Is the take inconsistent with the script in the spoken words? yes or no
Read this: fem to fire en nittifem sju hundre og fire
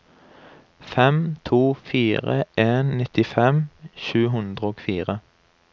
no